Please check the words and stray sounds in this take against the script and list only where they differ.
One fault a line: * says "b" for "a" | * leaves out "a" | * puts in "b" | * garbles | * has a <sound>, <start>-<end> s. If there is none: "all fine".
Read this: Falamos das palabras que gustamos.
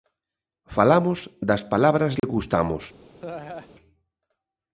* has a dropout, 2.2-2.2 s
* has a laugh, 3.2-3.7 s